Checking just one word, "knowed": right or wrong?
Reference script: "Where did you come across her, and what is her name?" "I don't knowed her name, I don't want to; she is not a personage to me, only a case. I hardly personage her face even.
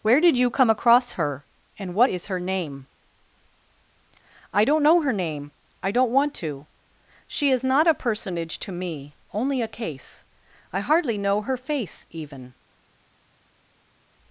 wrong